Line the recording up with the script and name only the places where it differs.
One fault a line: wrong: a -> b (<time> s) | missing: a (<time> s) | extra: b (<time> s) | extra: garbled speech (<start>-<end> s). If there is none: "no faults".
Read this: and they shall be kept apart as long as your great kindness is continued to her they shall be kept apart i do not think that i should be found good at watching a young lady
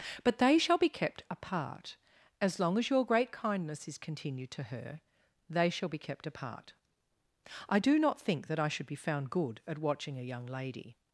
wrong: and -> but (0.2 s)